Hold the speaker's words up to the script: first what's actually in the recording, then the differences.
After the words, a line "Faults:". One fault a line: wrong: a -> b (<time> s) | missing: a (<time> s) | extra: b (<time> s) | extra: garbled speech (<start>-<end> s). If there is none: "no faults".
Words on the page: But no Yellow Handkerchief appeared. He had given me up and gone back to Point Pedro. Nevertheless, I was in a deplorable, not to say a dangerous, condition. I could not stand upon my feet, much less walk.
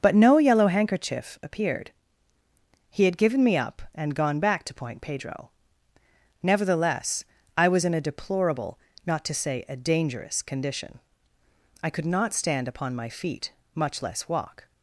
But no Yellow Handkerchief appeared. He had given me up and gone back to Point Pedro. Nevertheless, I was in a deplorable, not to say a dangerous, condition. I could not stand upon my feet, much less walk.
Faults:
no faults